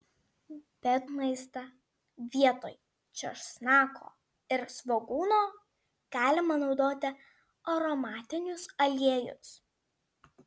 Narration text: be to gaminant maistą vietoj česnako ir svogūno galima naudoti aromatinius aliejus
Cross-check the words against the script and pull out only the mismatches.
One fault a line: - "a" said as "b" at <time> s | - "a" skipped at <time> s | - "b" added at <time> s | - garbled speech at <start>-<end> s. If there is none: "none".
- "to gaminant" skipped at 0.9 s